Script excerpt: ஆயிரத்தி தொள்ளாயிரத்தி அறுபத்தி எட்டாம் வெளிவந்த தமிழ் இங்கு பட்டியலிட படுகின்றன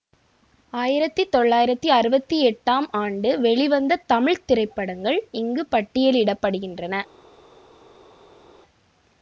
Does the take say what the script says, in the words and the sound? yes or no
no